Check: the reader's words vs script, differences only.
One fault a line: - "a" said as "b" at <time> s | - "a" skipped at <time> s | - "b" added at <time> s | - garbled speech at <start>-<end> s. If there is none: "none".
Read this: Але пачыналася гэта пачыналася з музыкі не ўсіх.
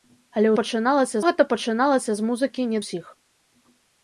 none